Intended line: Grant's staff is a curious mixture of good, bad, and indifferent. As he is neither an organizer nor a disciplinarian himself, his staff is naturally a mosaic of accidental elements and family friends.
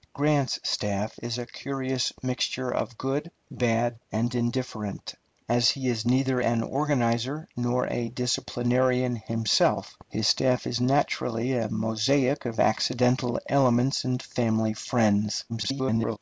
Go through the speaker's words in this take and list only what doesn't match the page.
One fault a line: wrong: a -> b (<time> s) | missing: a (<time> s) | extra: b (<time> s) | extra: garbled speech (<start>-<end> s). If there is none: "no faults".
extra: garbled speech (15.5-16.2 s)